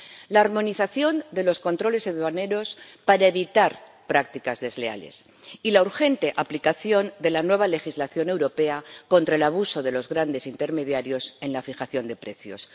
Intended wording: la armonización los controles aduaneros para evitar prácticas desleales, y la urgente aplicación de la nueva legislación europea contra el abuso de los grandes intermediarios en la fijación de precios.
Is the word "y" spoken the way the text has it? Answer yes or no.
yes